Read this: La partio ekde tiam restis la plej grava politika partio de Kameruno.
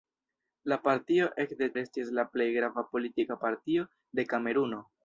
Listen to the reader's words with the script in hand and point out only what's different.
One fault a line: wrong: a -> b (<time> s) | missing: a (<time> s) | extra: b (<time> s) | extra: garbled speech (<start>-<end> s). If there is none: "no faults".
missing: tiam (1.7 s)